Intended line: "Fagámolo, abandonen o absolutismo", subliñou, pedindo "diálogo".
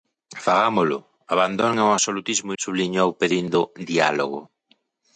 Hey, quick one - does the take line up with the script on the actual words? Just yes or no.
yes